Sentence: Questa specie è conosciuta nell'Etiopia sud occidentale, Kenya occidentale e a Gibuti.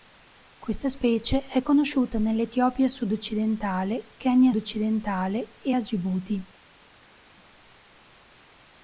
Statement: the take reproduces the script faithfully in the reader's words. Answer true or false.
true